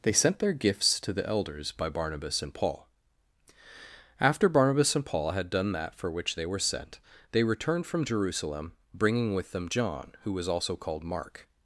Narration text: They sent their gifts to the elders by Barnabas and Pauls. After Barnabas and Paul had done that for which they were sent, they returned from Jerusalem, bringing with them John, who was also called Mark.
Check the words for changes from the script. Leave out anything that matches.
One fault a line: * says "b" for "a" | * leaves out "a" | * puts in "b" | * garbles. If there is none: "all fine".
* says "Paul" for "Pauls"